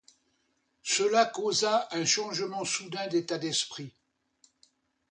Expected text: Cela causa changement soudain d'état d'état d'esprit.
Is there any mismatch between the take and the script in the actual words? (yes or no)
yes